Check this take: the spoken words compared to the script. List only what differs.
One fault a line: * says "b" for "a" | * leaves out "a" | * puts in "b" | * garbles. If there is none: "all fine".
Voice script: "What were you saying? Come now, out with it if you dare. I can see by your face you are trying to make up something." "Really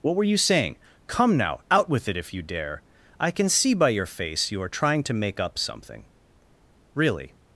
all fine